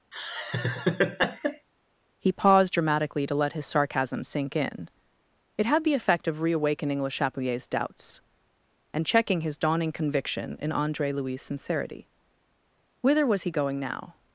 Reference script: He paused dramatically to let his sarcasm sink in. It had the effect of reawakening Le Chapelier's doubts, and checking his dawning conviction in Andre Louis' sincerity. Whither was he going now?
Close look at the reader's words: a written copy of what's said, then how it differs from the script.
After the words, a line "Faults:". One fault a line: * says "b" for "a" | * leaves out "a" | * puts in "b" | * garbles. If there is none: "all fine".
He paused dramatically to let his sarcasm sink in. It had the effect of reawakening Le Chapelier's doubts, and checking his dawning conviction in Andre Louis' sincerity. Whither was he going now?
Faults:
all fine